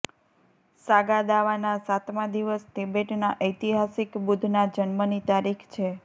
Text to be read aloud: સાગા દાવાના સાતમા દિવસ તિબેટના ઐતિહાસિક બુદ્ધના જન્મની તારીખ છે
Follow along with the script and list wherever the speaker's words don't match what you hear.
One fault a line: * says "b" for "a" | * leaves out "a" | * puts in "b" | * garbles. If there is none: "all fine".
all fine